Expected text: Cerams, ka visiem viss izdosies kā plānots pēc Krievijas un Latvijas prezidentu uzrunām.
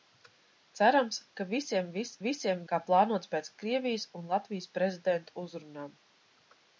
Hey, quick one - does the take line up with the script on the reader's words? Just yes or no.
no